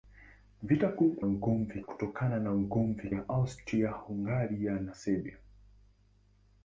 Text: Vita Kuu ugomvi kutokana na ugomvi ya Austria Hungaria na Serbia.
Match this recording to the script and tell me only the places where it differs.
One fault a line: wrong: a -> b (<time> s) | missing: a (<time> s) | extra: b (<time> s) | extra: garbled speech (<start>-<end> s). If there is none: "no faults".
no faults